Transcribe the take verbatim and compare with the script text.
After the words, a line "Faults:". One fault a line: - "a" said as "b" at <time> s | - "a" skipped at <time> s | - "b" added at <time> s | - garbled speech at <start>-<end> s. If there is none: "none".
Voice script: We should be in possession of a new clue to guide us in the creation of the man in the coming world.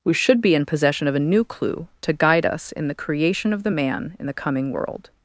We should be in possession of a new clue to guide us in the creation of the man in the coming world.
Faults:
none